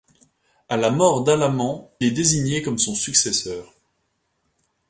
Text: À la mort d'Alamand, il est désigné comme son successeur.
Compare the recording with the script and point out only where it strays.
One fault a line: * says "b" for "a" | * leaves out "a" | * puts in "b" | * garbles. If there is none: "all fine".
* leaves out "il"